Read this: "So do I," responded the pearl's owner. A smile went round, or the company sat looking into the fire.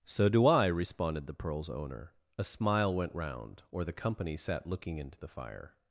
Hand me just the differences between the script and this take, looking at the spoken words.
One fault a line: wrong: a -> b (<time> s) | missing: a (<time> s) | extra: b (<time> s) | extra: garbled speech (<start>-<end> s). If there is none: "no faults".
no faults